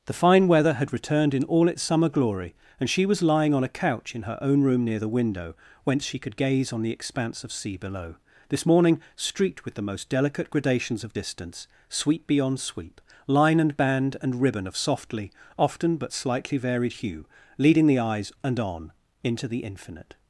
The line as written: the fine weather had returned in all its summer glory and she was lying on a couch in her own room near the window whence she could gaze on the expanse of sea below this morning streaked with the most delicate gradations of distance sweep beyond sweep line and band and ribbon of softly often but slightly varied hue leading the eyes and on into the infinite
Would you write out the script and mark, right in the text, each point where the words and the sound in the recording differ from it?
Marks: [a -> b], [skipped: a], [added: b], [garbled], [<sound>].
the fine weather had returned in all its summer glory and she was lying on a couch in her own room near the window whence she could gaze on the expanse of sea below this morning streaked with the most delicate gradations of distance sweep beyond sweep line and band and ribbon of softly often but slightly varied hue leading the eyes and on into the infinite